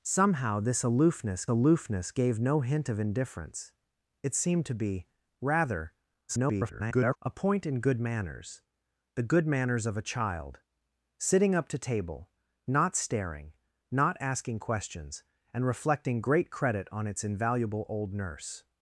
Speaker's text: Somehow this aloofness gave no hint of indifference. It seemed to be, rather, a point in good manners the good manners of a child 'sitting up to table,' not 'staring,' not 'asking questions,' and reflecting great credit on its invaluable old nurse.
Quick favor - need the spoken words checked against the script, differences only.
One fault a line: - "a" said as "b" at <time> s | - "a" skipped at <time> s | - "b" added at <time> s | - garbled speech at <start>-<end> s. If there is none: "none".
- "aloofness" added at 1.5 s
- garbled speech at 6.3-7.2 s